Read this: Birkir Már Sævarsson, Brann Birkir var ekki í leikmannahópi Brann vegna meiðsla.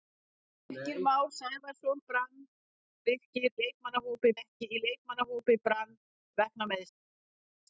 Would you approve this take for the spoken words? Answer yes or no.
no